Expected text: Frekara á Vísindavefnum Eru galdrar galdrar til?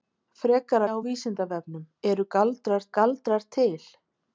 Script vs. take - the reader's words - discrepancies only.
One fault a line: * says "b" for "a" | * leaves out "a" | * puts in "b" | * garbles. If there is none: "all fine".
all fine